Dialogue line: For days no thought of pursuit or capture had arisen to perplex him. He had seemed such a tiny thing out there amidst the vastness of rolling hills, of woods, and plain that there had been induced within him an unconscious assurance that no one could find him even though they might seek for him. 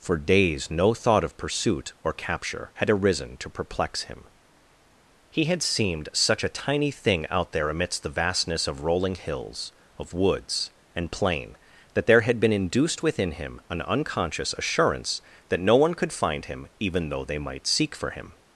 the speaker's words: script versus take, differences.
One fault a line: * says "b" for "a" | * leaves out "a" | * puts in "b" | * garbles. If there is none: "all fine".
all fine